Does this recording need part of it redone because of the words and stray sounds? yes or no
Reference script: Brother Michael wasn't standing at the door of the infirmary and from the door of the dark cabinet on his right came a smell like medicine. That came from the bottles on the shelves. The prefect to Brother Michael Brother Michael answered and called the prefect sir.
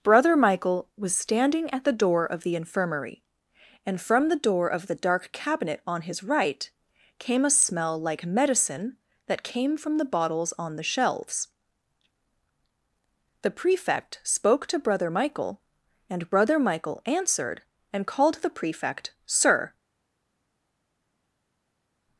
yes